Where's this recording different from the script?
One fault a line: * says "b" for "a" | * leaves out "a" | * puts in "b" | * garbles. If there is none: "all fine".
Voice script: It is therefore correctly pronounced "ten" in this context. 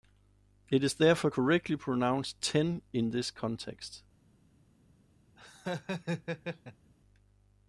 all fine